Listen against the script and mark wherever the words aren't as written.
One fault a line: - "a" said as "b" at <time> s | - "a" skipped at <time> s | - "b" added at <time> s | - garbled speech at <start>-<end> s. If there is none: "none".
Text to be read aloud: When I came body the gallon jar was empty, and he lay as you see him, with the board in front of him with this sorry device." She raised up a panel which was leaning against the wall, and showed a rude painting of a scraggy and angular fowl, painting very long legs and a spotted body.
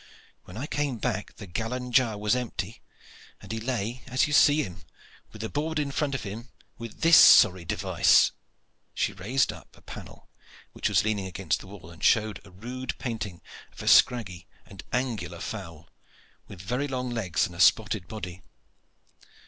- "body" said as "back" at 1.0 s
- "painting" said as "with" at 16.5 s